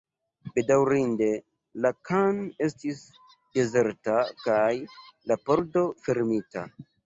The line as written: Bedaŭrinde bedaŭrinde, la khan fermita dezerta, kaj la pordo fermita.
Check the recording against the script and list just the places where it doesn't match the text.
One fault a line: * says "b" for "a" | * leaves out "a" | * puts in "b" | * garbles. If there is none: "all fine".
* leaves out "bedaŭrinde"
* says "estis" for "fermita"